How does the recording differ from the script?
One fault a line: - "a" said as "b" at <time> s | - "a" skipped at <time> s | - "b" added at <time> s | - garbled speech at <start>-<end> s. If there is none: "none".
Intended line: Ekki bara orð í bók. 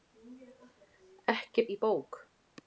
- "bara orð" skipped at 1.6 s